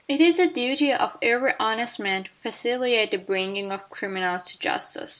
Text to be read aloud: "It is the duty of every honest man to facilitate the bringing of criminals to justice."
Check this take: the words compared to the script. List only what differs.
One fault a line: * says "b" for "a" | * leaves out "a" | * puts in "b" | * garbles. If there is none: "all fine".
all fine